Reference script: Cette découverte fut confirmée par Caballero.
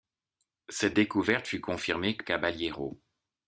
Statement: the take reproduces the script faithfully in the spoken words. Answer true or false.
false